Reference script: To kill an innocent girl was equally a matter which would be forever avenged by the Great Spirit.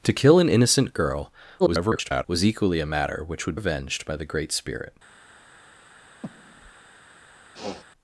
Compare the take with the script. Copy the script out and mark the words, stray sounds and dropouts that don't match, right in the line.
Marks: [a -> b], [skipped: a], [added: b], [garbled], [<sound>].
To kill an innocent girl [garbled] was equally a matter which would [skipped: be forever] avenged by the Great Spirit. [breath] [sniff]